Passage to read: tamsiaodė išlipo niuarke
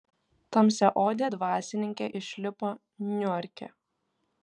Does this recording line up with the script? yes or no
no